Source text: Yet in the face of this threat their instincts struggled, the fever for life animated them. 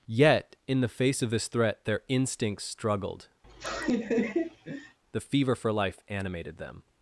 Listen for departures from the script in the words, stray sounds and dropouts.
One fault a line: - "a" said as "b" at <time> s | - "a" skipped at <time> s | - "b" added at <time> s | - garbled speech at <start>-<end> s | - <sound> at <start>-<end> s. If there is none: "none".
- laugh at 3.4-5.0 s